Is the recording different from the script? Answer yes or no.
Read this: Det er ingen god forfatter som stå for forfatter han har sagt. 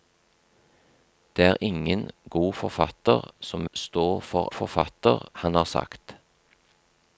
no